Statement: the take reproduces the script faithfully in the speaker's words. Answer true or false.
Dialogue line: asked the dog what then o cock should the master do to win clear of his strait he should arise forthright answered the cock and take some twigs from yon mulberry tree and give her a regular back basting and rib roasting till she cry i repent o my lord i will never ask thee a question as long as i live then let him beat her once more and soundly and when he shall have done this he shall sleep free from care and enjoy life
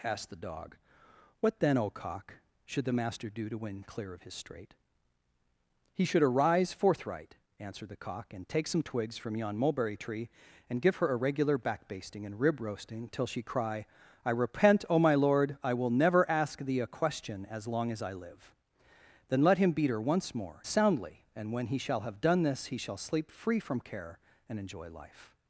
false